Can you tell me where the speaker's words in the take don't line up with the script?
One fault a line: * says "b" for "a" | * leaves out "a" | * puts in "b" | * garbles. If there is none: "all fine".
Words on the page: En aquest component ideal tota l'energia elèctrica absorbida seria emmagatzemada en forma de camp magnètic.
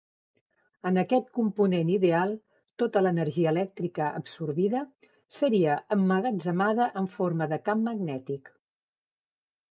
all fine